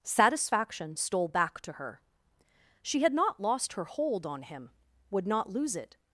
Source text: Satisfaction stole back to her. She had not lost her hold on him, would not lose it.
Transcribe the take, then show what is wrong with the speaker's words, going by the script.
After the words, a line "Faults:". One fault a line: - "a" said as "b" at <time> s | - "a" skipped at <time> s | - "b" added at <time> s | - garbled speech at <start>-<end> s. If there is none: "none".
Satisfaction stole back to her. She had not lost her hold on him, would not lose it.
Faults:
none